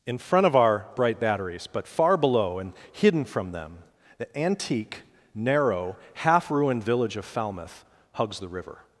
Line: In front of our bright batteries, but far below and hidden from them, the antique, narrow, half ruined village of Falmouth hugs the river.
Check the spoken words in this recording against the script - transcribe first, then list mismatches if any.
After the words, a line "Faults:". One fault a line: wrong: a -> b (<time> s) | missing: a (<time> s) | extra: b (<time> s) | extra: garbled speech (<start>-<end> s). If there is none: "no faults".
In front of our bright batteries, but far below and hidden from them, the antique, narrow, half ruined village of Falmouth hugs the river.
Faults:
no faults